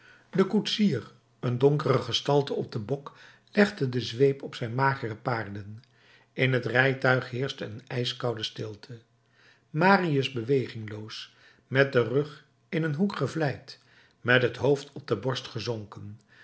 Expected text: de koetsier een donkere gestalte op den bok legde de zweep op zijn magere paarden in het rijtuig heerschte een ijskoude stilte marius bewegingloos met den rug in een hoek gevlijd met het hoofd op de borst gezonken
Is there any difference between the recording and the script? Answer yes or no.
no